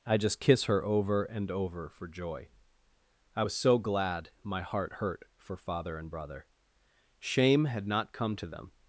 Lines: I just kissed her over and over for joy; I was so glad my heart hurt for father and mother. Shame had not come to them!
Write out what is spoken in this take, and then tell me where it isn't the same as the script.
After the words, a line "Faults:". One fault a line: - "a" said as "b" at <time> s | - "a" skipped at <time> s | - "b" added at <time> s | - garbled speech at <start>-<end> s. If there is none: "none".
I just kiss her over and over for joy; I was so glad my heart hurt for father and brother. Shame had not come to them!
Faults:
- "kissed" said as "kiss" at 0.4 s
- "mother" said as "brother" at 6.1 s